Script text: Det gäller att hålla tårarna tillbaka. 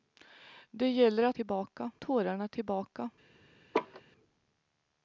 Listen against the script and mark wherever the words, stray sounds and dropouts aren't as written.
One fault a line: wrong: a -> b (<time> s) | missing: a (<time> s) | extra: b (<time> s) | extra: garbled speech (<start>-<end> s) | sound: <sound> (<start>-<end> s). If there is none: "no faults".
wrong: hålla -> tillbaka (1.3 s)
sound: laugh (3.7-4.0 s)